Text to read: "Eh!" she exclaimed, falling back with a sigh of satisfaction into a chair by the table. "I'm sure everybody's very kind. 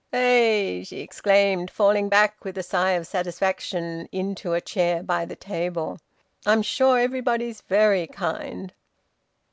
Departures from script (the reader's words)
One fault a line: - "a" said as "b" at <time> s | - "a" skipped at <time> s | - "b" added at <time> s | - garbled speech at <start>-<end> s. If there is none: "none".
none